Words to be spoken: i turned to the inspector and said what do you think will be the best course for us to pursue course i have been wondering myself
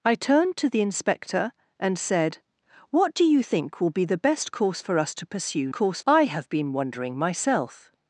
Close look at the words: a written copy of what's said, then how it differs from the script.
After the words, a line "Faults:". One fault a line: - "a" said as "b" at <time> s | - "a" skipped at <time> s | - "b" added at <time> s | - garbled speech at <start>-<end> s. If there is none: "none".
i turned to the inspector and said what do you think will be the best course for us to pursue course i have been wondering myself
Faults:
none